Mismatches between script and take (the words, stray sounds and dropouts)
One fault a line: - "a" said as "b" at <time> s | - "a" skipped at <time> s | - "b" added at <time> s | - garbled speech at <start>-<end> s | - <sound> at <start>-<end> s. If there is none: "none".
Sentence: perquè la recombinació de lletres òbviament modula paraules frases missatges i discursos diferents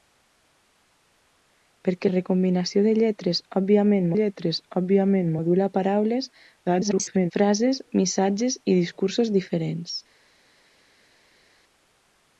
- "la" skipped at 2.1 s
- "lletres òbviament" added at 4.1 s
- garbled speech at 6.7-7.3 s